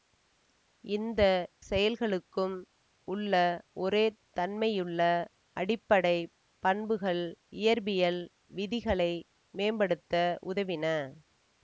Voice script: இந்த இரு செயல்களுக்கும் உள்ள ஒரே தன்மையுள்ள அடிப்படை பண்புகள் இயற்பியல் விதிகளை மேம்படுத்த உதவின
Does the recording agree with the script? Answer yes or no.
no